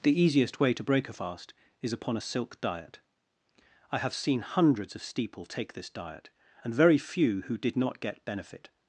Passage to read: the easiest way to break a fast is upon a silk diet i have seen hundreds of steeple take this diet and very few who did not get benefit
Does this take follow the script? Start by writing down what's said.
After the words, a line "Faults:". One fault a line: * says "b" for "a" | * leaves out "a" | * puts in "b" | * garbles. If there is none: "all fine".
the easiest way to break a fast is upon a silk diet i have seen hundreds of steeple take this diet and very few who did not get benefit
Faults:
all fine